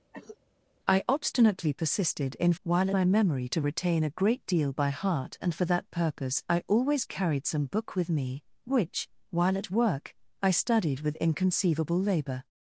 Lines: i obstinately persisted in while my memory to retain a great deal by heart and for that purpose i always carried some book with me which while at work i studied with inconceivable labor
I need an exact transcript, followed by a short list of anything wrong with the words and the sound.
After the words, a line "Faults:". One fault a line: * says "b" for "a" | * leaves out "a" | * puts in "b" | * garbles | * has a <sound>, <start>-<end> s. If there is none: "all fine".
i obstinately persisted in while my memory to retain a great deal by heart and for that purpose i always carried some book with me which while at work i studied with inconceivable labor
Faults:
* has a cough, 0.1-0.4 s